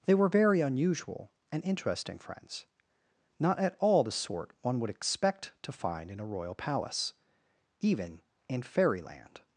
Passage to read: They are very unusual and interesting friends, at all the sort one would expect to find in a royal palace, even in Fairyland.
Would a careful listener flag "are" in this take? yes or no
yes